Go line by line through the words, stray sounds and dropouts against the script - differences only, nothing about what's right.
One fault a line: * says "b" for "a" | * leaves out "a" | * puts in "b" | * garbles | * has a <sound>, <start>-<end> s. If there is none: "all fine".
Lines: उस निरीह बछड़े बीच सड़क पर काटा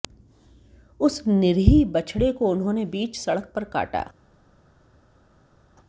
* puts in "को उन्होंने"